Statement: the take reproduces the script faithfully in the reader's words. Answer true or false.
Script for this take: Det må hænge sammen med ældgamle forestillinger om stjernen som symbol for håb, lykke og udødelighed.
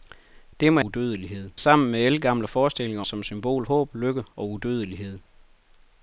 false